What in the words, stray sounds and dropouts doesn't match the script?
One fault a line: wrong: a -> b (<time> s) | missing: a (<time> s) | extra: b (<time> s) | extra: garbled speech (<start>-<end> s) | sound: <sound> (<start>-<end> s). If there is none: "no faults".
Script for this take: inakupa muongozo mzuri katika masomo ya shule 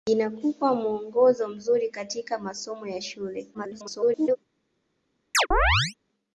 extra: garbled speech (3.5-4.4 s)
sound: chirp (5.3-5.9 s)